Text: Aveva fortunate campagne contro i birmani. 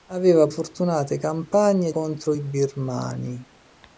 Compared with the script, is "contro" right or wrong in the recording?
right